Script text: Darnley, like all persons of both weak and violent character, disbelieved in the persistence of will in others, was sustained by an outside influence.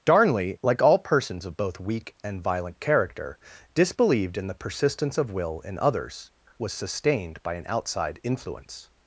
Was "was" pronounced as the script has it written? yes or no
yes